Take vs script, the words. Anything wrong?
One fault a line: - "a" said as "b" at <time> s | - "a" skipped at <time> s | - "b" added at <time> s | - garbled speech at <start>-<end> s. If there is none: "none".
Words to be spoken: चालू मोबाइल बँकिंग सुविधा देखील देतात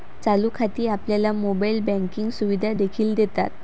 - "खाती आपल्याला" added at 0.5 s